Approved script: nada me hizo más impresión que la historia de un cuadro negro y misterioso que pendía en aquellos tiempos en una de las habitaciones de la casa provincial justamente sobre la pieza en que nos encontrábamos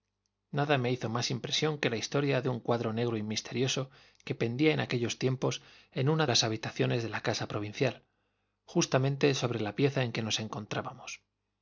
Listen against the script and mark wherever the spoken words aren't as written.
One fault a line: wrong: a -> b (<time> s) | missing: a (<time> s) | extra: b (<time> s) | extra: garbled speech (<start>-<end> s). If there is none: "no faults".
missing: de (6.2 s)